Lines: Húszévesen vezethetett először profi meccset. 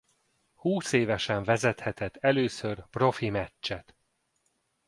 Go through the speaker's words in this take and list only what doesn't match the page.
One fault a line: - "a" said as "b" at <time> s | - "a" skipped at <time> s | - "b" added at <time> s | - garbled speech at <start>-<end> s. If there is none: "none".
none